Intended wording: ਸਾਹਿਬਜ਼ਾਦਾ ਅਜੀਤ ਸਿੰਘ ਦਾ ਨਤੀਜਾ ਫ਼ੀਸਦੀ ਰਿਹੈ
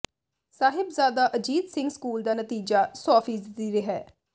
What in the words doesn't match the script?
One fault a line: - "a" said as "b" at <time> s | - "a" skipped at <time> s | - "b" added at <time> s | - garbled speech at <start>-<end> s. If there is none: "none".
- "ਸਕੂਲ" added at 1.9 s
- "ਸੌ" added at 3.0 s